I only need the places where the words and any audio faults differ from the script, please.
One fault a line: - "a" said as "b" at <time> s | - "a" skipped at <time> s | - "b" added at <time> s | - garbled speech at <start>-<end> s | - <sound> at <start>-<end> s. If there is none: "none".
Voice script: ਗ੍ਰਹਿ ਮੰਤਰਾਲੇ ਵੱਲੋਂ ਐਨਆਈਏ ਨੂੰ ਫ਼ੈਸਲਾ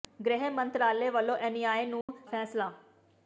- dropout at 2.0-2.1 s